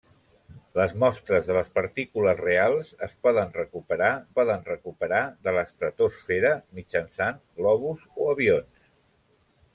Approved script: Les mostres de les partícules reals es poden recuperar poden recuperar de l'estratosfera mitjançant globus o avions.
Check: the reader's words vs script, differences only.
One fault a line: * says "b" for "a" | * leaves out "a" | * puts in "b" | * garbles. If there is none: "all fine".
all fine